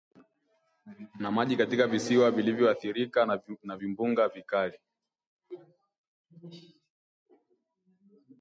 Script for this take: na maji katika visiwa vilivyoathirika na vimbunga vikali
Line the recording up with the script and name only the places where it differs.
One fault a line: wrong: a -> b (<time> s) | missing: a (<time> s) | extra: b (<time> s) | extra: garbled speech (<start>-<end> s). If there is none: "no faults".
no faults